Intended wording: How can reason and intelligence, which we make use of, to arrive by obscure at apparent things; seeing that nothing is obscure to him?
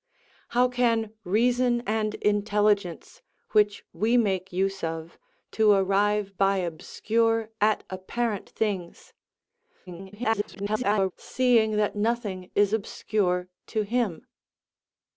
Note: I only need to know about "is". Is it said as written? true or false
true